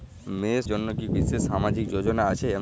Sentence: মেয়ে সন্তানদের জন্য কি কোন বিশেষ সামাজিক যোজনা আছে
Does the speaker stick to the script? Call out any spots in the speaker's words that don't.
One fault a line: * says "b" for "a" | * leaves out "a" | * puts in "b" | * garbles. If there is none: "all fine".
* leaves out "সন্তানদের"
* leaves out "কোন"